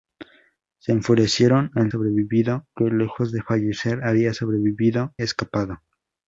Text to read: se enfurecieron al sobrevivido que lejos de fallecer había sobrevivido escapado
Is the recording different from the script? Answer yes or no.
no